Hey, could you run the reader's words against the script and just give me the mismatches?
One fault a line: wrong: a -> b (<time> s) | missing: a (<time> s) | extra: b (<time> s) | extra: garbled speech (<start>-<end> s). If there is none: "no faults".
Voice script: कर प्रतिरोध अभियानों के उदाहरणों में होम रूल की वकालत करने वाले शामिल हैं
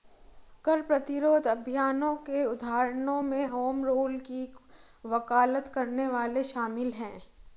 no faults